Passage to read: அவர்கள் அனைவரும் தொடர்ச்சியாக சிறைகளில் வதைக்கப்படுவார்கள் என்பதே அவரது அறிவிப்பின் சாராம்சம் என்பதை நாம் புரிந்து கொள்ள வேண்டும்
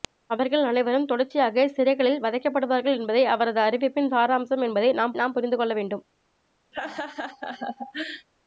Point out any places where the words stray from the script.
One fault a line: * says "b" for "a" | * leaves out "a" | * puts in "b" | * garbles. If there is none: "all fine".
* puts in "நாம்"